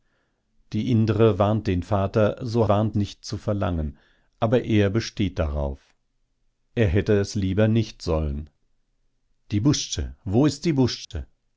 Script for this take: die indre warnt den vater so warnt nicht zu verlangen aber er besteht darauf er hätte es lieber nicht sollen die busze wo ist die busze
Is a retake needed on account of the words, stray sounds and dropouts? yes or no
yes